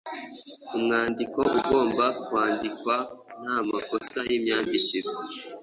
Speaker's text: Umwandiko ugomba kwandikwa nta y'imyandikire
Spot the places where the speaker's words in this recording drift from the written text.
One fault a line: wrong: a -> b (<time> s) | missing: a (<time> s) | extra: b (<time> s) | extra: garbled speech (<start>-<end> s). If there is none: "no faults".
extra: makosa (3.7 s)